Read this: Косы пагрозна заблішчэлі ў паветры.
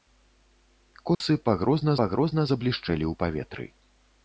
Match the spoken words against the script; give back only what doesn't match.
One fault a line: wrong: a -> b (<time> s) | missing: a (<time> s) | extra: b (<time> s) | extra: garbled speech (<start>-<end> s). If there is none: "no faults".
extra: пагрозна (2.0 s)